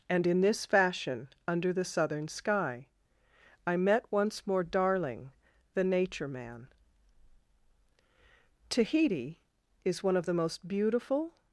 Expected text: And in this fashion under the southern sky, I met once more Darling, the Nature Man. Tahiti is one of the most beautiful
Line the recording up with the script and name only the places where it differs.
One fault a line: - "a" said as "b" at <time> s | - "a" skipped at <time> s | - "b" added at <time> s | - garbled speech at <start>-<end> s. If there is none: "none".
none